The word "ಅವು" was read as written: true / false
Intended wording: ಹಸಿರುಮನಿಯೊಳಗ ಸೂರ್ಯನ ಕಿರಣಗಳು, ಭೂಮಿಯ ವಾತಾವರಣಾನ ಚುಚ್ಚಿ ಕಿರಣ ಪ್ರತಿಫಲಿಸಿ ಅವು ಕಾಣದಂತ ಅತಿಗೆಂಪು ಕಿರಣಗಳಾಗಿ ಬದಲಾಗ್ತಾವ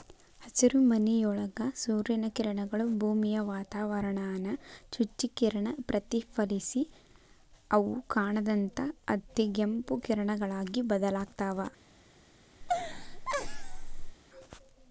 true